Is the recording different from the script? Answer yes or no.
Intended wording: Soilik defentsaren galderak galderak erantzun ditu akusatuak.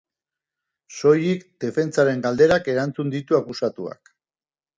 yes